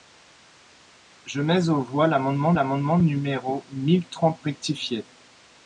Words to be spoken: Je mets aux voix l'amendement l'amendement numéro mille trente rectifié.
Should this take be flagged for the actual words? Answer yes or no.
no